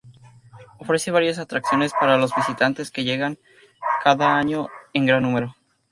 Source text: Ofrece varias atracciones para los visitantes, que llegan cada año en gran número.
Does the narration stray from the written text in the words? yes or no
no